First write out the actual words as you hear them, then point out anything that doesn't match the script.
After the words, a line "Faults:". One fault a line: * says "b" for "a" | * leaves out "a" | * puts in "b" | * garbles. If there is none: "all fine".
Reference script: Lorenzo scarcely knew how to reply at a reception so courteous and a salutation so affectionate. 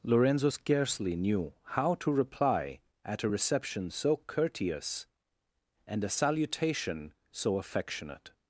Lorenzo scarcely knew how to reply at a reception so courteous and a salutation so affectionate.
Faults:
all fine